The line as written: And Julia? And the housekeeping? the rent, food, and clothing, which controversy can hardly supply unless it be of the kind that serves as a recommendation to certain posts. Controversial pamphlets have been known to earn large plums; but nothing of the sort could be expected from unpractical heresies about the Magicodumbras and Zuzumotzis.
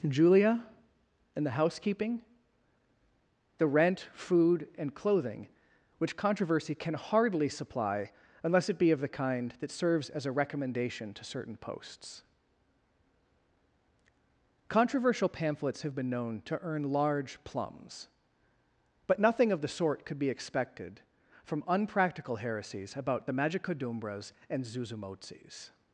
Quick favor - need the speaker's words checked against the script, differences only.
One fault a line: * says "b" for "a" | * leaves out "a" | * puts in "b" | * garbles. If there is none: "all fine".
* leaves out "And"